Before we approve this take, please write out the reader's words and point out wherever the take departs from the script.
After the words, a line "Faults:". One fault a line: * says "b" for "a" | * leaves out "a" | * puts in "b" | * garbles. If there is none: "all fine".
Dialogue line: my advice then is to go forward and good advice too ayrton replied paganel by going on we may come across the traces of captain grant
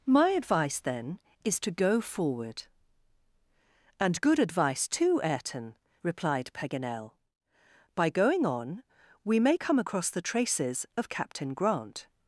my advice then is to go forward and good advice too ayrton replied paganel by going on we may come across the traces of captain grant
Faults:
all fine